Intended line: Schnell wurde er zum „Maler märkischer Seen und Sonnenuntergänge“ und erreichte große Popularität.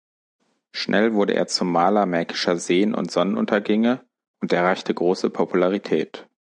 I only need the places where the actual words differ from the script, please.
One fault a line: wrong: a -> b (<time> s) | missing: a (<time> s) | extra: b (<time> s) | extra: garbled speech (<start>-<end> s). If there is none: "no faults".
no faults